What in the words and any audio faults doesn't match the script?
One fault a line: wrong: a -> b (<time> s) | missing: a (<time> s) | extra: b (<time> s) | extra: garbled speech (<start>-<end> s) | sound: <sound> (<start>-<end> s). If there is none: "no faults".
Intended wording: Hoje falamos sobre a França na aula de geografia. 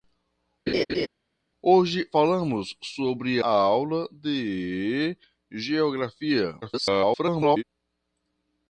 sound: laugh (0.7-1.1 s)
missing: a França na (3.4 s)
extra: garbled speech (6.6-7.6 s)